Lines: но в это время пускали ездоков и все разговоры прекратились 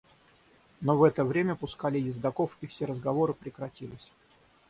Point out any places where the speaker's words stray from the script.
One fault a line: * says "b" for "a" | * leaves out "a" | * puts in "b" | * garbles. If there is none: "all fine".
all fine